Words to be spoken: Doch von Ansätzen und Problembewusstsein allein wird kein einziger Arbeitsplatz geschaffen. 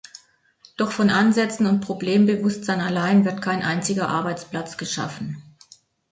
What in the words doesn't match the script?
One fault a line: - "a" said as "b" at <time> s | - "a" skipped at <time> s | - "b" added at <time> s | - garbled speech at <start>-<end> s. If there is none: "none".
none